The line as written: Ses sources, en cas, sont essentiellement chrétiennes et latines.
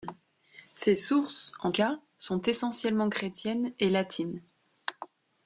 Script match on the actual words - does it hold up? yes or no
yes